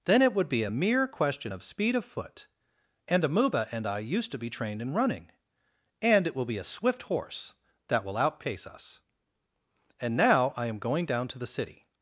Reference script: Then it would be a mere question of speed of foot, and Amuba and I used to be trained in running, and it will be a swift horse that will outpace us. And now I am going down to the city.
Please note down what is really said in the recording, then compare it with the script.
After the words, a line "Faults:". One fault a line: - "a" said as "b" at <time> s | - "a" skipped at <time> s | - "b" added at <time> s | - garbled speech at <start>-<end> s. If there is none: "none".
Then it would be a mere question of speed of foot, and Amuba and I used to be trained in running, and it will be a swift horse that will outpace us. And now I am going down to the city.
Faults:
none